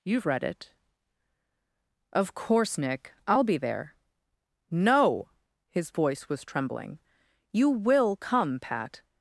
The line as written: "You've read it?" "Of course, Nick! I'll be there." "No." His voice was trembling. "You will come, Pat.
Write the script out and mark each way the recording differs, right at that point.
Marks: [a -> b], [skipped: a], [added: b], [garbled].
"You've read it?" "Of course, Nick! I'll be there." "No." His voice was trembling. "You will come, Pat.